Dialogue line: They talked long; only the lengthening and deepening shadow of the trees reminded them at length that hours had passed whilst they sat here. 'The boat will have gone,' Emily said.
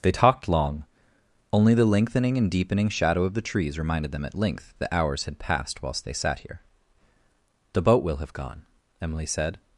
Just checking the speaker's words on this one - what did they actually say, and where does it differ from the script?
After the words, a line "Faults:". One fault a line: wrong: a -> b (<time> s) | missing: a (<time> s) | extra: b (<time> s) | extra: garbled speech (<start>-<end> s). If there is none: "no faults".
They talked long; only the lengthening and deepening shadow of the trees reminded them at length that hours had passed whilst they sat here. 'The boat will have gone,' Emily said.
Faults:
no faults